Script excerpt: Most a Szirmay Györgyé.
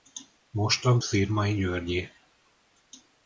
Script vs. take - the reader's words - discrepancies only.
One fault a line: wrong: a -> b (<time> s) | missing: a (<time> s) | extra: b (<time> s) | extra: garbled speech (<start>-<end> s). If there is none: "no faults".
no faults